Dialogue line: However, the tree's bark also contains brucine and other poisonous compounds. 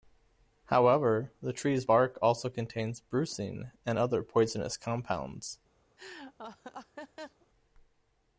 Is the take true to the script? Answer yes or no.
yes